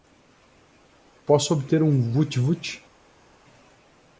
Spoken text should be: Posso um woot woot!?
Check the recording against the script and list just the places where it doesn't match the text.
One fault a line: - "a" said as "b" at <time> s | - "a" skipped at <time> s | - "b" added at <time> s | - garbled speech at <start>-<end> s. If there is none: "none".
- "obter" added at 1.5 s